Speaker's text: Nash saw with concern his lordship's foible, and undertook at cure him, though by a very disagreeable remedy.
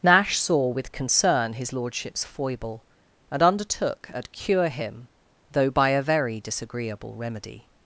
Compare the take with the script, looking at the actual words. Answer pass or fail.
pass